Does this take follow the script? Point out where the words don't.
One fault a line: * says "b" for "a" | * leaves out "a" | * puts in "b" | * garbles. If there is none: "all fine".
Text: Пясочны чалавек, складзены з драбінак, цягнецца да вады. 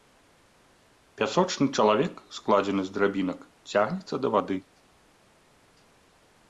all fine